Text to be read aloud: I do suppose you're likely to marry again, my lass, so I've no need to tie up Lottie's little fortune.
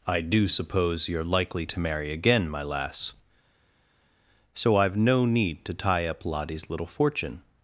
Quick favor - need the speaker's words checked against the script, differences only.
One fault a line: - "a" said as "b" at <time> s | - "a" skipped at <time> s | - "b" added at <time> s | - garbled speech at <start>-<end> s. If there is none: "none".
none